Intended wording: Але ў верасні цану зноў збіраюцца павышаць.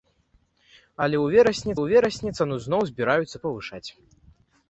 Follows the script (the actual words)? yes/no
no